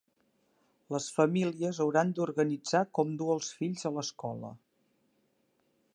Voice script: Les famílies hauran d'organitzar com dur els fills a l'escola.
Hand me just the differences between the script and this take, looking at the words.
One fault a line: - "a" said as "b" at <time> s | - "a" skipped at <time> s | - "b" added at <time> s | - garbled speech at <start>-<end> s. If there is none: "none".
none